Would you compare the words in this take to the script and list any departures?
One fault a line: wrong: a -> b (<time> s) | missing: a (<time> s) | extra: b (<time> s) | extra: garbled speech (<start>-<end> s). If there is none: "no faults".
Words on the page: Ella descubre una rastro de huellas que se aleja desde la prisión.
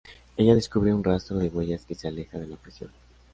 wrong: una -> un (0.9 s)
wrong: desde -> de (2.4 s)